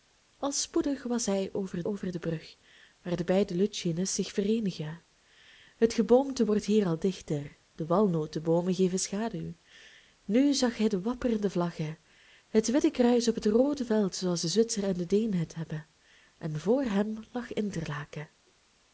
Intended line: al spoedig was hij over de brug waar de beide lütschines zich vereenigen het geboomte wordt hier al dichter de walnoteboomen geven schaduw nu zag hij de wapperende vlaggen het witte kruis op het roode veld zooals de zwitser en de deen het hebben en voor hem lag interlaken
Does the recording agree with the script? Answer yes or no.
no